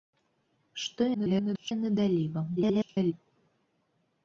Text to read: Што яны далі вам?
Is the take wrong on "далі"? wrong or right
right